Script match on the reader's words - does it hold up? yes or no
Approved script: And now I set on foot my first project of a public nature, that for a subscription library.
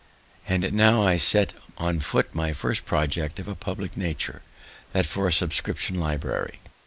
yes